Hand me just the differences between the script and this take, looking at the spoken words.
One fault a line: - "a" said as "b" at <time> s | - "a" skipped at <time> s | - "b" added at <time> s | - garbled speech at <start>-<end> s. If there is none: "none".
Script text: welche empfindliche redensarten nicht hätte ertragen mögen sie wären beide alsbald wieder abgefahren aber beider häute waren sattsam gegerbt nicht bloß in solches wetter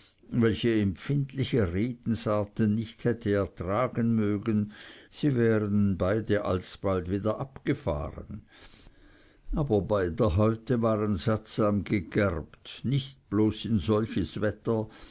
none